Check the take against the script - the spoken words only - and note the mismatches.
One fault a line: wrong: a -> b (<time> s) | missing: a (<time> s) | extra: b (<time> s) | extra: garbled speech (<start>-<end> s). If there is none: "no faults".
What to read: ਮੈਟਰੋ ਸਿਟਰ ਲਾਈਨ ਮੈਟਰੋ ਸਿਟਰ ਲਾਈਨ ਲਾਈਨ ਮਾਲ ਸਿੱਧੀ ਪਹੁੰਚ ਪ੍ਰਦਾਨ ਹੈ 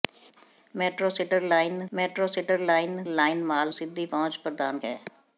no faults